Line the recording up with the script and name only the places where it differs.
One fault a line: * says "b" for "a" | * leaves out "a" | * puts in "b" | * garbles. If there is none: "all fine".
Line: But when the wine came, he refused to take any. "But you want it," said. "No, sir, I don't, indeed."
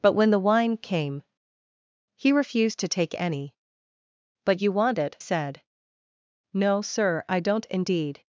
all fine